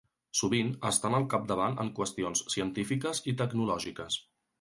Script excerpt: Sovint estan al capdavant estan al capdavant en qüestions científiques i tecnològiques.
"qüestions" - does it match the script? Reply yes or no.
yes